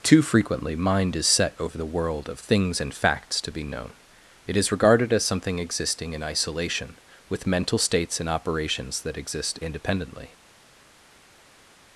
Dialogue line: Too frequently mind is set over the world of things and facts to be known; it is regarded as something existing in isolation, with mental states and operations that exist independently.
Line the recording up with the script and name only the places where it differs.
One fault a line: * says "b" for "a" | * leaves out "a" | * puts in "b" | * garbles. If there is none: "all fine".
all fine